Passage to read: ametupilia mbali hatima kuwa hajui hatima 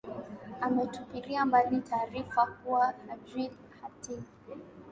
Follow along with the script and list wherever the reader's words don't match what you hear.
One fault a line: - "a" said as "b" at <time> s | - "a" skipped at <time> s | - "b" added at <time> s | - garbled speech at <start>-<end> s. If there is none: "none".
- "hatima" said as "taarifa" at 1.8 s